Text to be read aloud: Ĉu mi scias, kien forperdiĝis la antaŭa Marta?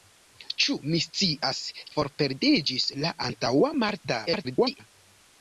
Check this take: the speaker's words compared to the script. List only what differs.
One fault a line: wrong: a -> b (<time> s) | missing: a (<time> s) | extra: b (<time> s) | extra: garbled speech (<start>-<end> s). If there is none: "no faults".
missing: kien (1.6 s)
extra: garbled speech (4.3-4.8 s)